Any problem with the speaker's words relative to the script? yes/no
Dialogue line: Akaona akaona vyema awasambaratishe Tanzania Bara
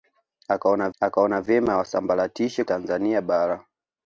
no